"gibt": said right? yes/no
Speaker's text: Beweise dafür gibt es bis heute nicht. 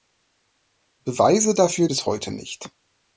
no